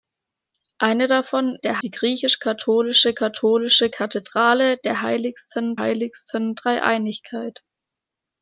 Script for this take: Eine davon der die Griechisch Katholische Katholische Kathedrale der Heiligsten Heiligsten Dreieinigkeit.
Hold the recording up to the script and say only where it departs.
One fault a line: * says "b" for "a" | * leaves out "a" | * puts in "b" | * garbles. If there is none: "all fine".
all fine